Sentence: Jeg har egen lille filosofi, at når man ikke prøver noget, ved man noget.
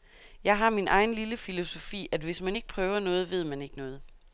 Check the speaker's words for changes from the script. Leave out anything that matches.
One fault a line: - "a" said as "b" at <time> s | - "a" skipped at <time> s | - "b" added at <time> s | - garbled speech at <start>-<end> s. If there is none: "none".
- "min" added at 0.7 s
- "når" said as "hvis" at 2.2 s
- "ikke" added at 3.6 s